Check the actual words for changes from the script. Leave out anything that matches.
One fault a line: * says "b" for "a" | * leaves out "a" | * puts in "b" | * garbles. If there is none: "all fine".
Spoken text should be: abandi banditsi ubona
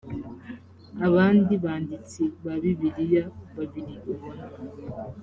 * puts in "ba bibiliya babiri"